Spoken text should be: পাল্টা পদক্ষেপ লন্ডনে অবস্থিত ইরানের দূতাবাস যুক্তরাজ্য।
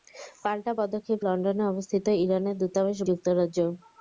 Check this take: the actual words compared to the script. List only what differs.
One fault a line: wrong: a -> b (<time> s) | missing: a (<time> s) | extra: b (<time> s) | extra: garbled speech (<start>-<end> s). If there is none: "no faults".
no faults